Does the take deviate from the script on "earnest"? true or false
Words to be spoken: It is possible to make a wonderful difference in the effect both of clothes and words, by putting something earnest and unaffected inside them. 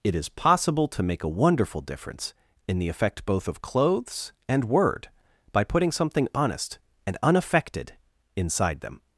true